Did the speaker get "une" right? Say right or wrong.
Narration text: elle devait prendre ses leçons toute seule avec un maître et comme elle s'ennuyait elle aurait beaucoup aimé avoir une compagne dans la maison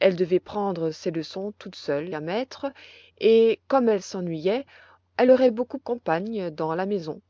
wrong